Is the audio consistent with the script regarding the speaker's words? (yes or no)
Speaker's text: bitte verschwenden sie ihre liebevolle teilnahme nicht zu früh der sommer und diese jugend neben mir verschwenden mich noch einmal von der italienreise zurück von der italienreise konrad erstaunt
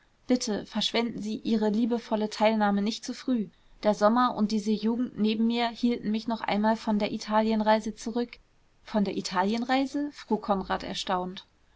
no